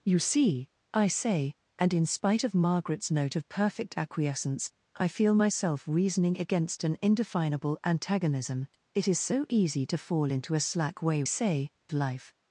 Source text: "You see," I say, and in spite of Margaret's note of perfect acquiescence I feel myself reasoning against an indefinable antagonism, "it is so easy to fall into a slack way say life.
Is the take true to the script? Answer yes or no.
yes